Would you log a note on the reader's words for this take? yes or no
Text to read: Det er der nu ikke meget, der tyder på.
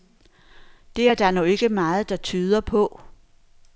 no